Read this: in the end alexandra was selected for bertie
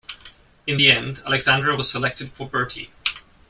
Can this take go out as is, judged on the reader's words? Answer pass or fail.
pass